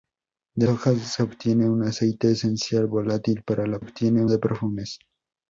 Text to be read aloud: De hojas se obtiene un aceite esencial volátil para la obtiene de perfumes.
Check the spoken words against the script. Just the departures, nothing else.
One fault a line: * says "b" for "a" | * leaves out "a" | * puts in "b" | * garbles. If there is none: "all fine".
all fine